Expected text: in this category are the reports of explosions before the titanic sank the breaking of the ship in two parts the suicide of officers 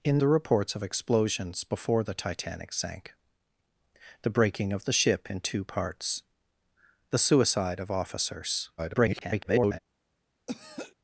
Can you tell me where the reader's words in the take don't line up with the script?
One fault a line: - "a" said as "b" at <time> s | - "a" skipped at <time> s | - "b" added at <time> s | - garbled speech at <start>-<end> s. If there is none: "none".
- "this category are" skipped at 0.2 s
- garbled speech at 8.8-9.8 s